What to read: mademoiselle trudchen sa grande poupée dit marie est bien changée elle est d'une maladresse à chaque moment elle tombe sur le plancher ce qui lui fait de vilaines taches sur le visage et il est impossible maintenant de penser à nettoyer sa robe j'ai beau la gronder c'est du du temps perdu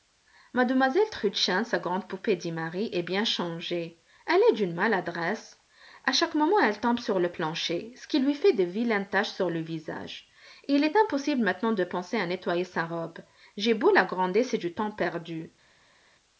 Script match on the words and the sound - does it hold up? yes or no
no